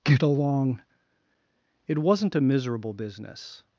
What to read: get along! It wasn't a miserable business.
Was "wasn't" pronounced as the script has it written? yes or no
yes